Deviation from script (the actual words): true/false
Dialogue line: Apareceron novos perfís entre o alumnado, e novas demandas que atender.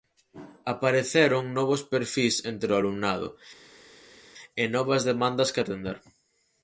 false